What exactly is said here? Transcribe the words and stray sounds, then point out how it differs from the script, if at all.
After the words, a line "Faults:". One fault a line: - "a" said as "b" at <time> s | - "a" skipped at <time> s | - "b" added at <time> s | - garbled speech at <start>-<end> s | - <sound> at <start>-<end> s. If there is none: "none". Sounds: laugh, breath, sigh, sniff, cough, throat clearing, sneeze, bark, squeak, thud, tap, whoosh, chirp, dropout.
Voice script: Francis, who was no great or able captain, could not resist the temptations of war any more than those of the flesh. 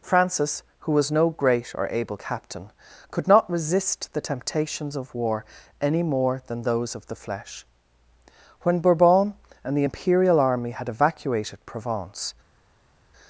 Francis, who was no great or able captain, could not resist the temptations of war any more than those of the flesh. When Bourbon and the imperial army had evacuated Provence
Faults:
- "When Bourbon and the imperial army had evacuated Provence" added at 8.6 s